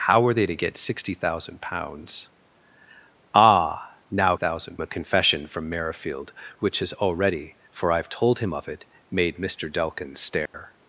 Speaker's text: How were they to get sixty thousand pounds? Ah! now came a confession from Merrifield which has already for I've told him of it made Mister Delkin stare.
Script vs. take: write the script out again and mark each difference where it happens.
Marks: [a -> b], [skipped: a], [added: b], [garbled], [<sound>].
How were they to get sixty thousand pounds? Ah! now [came -> thousand] a confession from Merrifield which has already for I've told him of it made Mister Delkin stare. [dropout]